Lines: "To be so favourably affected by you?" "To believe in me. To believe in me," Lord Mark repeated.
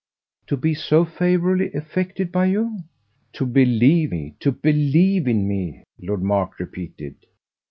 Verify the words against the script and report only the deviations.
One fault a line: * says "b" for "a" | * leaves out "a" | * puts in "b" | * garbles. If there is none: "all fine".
* leaves out "in"